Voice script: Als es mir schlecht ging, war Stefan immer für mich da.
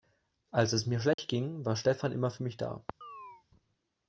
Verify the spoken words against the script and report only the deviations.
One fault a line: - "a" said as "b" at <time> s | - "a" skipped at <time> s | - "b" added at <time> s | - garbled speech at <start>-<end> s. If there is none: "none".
none